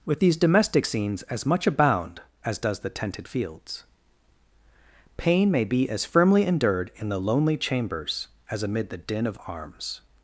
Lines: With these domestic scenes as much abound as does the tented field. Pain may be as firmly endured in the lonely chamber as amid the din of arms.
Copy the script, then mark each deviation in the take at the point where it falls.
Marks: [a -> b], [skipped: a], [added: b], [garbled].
With these domestic scenes as much abound as does the tented [field. -> fields] Pain may be as firmly endured in the lonely [chamber -> chambers] as amid the din of arms.